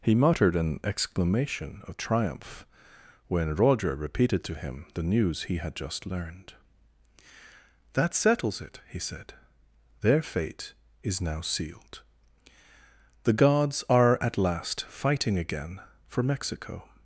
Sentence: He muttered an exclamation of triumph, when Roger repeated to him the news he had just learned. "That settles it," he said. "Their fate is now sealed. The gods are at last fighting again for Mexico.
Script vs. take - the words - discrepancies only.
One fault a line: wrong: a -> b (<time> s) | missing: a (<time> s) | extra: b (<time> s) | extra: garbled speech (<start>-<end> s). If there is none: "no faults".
no faults